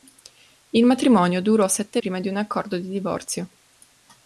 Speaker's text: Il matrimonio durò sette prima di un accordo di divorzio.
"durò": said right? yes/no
yes